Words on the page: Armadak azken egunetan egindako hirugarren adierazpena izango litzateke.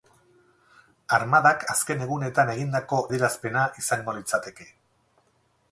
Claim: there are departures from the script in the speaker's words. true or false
true